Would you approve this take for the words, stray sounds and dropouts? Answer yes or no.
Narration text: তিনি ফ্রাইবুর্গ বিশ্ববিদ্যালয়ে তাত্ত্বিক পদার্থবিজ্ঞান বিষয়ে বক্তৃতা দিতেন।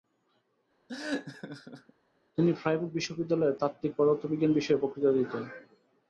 no